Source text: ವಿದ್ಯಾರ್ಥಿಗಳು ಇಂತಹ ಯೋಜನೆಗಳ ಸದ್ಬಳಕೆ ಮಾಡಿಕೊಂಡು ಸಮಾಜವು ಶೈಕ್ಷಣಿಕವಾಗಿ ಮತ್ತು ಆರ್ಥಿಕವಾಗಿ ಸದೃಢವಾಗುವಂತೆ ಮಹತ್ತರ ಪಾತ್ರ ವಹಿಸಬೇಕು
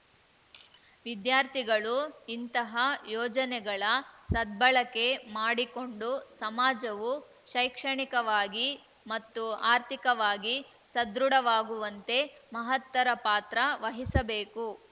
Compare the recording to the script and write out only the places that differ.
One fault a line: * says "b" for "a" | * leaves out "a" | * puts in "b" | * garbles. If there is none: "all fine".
all fine